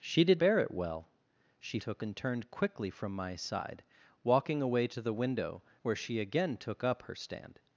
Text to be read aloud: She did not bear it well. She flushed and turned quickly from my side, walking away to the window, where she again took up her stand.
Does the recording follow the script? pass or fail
fail